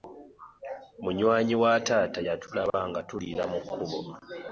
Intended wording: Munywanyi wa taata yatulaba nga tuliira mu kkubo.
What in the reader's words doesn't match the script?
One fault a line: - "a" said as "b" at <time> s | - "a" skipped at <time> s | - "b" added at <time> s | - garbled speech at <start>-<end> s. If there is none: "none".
none